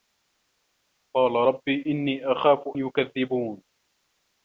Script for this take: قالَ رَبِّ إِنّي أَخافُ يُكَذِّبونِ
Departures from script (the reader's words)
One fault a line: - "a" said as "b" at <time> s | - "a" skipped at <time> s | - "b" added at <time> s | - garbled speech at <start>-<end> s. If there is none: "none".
none